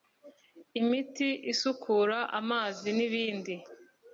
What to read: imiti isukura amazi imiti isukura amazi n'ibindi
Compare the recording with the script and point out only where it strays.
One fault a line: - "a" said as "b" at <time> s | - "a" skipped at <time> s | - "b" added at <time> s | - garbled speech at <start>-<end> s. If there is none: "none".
- "imiti isukura amazi" skipped at 2.9 s